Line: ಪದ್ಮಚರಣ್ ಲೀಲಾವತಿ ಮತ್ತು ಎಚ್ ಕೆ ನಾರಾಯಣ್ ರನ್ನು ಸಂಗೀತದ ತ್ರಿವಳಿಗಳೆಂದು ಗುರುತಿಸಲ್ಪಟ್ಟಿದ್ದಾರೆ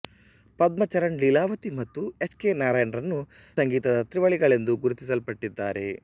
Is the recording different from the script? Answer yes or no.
no